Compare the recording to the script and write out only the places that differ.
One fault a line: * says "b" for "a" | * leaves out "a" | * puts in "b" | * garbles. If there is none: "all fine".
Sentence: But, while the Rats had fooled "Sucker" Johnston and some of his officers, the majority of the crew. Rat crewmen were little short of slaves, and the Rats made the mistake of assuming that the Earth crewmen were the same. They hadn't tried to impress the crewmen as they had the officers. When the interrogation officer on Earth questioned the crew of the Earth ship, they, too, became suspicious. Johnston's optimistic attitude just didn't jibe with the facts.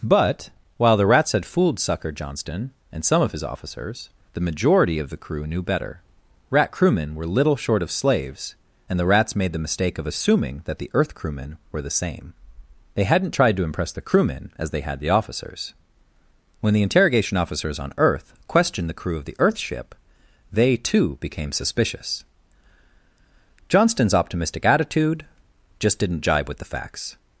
* puts in "knew better"
* says "officers" for "officer"